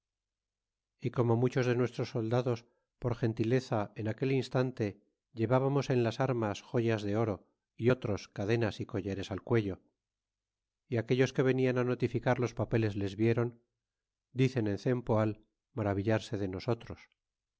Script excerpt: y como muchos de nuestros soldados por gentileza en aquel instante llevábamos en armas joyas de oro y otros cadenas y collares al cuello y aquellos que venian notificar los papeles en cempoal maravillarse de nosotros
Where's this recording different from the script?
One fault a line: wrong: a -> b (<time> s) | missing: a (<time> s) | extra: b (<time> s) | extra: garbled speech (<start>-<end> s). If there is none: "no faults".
extra: las (6.0 s)
extra: les vieron dicen (12.9 s)